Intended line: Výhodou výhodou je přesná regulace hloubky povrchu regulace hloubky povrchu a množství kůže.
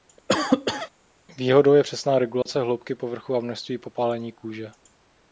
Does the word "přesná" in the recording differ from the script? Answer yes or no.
no